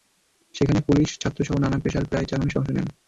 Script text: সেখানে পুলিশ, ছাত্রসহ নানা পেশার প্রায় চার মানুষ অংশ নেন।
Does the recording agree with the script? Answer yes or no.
yes